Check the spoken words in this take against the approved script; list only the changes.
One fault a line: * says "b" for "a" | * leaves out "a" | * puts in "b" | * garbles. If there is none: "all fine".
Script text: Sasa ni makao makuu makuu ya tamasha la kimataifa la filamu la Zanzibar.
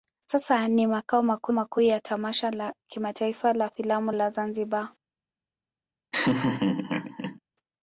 all fine